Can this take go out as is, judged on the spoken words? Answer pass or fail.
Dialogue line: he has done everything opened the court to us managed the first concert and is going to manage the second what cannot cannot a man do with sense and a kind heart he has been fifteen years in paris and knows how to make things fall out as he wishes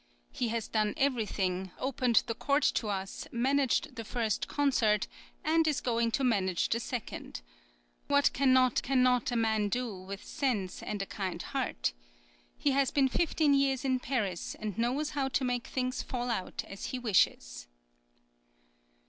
pass